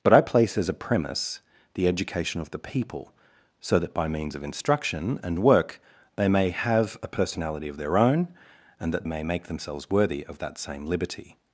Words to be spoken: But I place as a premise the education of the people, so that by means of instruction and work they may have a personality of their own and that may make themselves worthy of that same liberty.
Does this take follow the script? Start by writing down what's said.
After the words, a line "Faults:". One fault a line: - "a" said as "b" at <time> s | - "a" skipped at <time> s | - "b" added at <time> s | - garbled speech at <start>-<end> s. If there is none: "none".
But I place as a premise the education of the people, so that by means of instruction and work they may have a personality of their own and that may make themselves worthy of that same liberty.
Faults:
none